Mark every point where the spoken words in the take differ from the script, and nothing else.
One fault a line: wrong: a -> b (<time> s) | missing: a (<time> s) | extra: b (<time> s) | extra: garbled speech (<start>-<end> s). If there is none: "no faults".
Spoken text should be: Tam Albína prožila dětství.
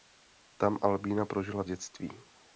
no faults